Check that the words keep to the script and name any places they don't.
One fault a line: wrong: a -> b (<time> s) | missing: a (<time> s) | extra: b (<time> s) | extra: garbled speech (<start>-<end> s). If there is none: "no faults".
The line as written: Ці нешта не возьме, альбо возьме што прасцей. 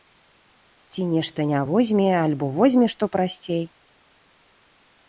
no faults